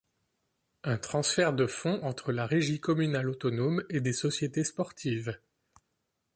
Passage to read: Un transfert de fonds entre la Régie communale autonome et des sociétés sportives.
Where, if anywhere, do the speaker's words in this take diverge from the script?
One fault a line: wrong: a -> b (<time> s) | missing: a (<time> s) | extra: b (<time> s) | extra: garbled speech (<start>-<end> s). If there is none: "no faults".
no faults